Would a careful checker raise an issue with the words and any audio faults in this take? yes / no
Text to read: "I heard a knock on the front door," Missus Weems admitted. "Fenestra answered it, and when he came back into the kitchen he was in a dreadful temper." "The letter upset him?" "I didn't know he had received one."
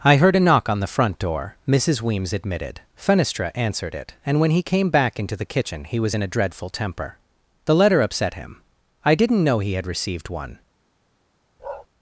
yes